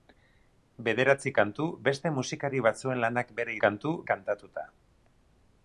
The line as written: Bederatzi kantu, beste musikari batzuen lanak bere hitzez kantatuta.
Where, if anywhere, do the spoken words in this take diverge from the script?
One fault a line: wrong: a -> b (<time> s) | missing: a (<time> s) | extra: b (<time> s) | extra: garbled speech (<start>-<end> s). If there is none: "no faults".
wrong: hitzez -> kantu (3.6 s)